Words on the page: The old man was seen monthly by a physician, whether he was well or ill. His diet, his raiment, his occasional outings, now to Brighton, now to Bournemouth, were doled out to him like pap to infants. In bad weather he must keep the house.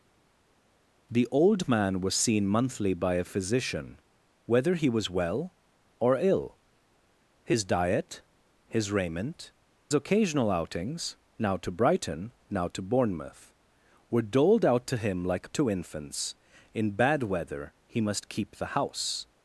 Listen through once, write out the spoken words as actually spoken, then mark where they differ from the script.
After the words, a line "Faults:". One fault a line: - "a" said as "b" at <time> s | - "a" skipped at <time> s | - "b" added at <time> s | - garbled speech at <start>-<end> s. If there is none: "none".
The old man was seen monthly by a physician, whether he was well or ill. His diet, his raiment, occasional outings, now to Brighton, now to Bournemouth, were doled out to him like to infants. In bad weather he must keep the house.
Faults:
- "his" skipped at 9.5 s
- "pap" skipped at 15.5 s